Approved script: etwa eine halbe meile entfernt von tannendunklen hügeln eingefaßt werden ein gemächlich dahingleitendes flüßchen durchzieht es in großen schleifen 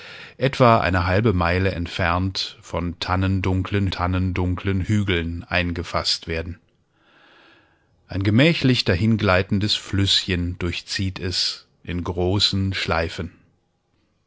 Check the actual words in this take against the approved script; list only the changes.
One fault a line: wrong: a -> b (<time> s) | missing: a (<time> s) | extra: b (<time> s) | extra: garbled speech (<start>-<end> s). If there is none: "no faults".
extra: tannendunklen (3.9 s)